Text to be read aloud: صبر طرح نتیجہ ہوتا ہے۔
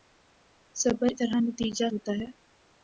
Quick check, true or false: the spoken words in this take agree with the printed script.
true